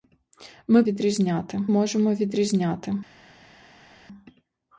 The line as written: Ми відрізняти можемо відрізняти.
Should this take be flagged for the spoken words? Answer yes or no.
no